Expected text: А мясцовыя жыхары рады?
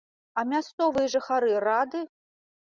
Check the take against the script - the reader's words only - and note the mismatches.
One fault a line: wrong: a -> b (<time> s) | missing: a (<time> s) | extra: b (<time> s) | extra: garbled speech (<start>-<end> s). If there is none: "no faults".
no faults